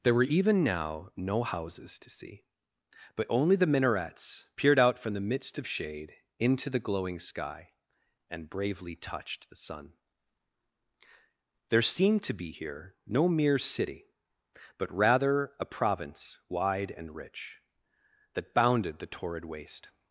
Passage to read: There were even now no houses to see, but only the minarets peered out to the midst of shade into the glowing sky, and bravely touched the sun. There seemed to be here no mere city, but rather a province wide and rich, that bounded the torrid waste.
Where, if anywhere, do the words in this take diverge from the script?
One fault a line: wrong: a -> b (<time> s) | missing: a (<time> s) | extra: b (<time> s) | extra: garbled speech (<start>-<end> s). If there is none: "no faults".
wrong: to -> from (5.0 s)